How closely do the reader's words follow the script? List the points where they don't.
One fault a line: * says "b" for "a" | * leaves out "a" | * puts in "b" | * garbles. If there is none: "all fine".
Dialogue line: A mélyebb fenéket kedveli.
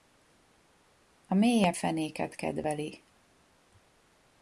all fine